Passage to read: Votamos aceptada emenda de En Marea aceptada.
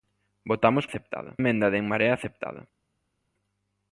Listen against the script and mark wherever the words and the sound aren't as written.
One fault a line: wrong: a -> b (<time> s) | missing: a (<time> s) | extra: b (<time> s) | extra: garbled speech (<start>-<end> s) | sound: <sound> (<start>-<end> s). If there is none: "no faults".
no faults